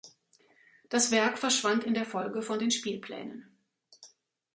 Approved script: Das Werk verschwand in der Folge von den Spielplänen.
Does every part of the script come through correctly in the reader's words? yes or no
yes